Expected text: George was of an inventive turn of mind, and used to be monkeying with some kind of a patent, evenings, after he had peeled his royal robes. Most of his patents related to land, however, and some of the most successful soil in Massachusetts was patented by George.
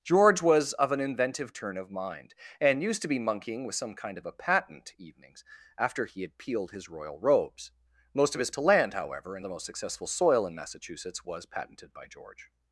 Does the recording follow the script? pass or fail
fail